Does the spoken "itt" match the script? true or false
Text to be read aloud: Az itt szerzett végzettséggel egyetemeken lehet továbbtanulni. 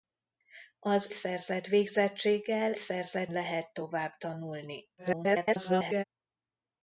false